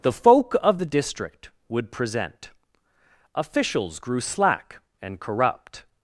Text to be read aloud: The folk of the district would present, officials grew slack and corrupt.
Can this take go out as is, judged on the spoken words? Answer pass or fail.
pass